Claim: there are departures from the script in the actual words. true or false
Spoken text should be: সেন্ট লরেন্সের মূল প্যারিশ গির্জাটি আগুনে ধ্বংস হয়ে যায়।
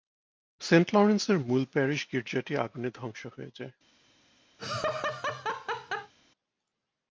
false